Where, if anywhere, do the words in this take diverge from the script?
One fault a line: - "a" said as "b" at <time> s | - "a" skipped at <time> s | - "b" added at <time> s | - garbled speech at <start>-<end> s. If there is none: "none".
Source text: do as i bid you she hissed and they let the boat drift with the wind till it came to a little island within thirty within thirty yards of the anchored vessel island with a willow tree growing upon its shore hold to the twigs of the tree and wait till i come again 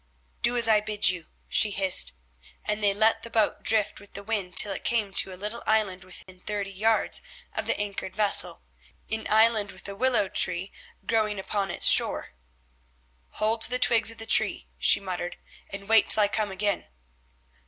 - "within thirty" skipped at 6.7 s
- "an" added at 9.1 s
- "she muttered" added at 14.8 s